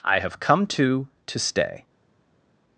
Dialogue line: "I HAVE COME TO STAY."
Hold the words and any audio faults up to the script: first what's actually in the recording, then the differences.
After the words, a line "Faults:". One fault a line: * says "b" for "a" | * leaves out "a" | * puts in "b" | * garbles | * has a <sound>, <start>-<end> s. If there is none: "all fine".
"I HAVE COME TO TO STAY."
Faults:
* puts in "TO"